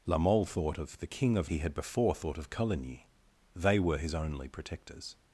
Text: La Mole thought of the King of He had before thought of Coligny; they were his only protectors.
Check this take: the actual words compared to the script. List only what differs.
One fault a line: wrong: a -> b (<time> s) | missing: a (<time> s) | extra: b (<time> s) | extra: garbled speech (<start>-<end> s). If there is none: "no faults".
no faults